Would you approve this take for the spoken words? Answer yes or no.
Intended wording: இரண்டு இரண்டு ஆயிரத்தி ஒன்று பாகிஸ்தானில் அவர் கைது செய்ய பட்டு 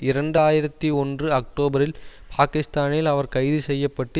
no